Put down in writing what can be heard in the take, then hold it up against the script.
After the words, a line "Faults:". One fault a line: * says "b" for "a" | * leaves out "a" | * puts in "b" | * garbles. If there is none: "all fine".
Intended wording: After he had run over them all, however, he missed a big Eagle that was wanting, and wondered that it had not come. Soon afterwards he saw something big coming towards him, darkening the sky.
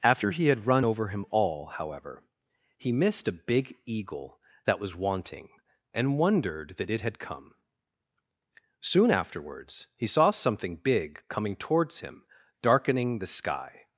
After he had run over him all, however, he missed a big Eagle that was wanting, and wondered that it had come. Soon afterwards he saw something big coming towards him, darkening the sky.
Faults:
* says "him" for "them"
* leaves out "not"